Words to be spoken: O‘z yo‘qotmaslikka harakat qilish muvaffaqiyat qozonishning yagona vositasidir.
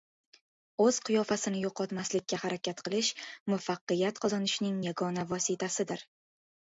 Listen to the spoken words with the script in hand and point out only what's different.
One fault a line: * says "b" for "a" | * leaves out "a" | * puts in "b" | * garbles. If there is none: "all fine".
* puts in "qiyofasini"